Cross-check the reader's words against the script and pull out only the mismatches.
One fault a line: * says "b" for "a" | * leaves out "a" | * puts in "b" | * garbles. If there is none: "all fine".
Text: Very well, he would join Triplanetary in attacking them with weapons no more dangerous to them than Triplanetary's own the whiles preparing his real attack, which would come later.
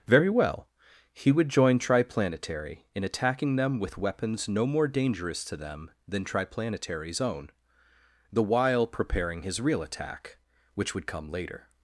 * says "while" for "whiles"